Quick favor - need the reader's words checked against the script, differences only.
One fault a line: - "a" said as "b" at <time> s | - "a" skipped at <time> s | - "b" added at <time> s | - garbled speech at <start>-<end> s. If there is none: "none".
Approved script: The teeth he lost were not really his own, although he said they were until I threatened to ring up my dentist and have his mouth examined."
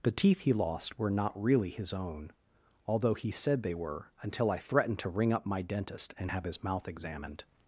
none